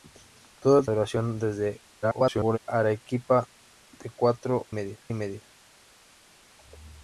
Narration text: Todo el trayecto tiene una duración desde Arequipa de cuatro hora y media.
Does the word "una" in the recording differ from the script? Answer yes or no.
yes